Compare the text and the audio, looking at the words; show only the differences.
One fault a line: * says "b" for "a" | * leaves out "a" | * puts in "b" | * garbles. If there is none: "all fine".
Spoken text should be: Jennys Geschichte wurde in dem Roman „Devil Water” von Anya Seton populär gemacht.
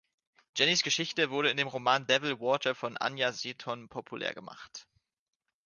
all fine